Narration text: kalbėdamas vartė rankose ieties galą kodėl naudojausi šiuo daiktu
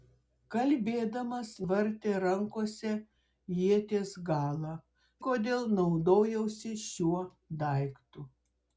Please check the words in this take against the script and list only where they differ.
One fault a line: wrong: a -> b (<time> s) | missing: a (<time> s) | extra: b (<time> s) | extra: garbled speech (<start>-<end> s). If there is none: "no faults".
no faults